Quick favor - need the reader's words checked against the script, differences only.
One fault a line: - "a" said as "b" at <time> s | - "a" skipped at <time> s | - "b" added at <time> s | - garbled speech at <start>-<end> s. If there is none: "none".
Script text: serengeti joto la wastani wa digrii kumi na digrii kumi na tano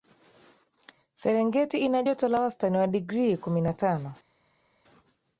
- "ina" added at 1.8 s
- "digrii kumi na" skipped at 3.7 s